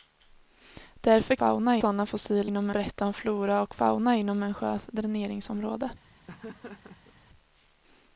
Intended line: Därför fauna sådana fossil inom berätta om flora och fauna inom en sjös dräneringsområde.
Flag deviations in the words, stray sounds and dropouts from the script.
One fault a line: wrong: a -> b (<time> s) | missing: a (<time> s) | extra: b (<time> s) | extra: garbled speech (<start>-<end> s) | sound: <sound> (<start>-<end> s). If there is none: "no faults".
sound: laugh (6.3-7.2 s)